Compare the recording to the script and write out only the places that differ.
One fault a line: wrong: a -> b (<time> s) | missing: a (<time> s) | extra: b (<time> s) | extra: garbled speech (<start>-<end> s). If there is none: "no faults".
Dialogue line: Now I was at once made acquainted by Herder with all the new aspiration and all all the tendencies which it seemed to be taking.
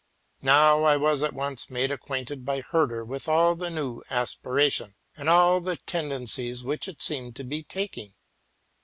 missing: all (5.6 s)